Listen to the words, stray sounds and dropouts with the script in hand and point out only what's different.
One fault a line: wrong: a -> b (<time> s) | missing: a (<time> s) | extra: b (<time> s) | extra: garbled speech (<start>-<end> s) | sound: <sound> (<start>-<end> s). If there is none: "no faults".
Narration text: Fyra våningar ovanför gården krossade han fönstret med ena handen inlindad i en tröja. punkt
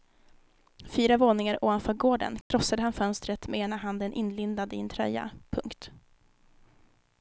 sound: dropout (2.4-2.5 s)